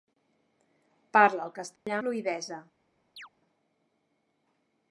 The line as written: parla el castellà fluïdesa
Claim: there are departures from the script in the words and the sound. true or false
true